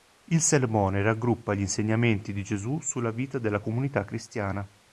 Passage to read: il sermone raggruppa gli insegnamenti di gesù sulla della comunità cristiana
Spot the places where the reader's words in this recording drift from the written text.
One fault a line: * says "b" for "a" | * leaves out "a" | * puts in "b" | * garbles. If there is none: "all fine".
* puts in "vita"